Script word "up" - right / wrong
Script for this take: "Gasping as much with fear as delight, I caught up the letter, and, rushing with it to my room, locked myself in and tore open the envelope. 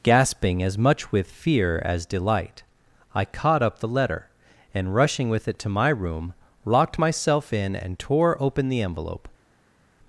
right